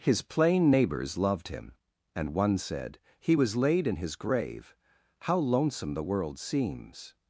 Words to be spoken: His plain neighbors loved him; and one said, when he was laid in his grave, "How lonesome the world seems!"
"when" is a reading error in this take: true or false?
true